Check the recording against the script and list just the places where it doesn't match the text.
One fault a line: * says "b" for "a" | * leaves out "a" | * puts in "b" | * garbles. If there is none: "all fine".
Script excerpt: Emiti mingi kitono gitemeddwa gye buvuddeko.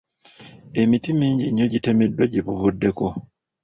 * says "nnyo" for "kitono"